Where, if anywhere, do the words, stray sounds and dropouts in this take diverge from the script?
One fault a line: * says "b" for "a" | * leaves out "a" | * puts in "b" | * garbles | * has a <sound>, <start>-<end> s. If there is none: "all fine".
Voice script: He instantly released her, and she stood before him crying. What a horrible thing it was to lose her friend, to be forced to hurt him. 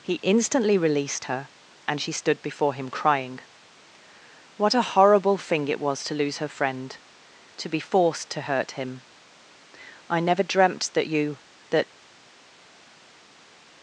* puts in "I never dreamt that you that"